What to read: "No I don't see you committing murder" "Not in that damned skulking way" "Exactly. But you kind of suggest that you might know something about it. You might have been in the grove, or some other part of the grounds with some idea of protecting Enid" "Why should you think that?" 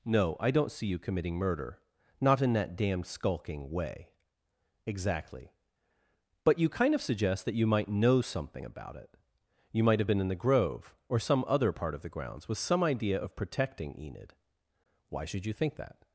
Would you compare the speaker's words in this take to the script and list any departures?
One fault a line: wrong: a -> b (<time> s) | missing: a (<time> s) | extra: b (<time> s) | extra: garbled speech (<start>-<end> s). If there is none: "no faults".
no faults